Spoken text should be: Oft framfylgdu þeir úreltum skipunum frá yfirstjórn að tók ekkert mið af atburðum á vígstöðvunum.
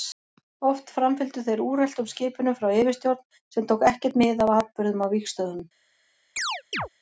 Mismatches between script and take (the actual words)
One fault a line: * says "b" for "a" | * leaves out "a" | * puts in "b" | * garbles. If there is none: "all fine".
* says "sem" for "að"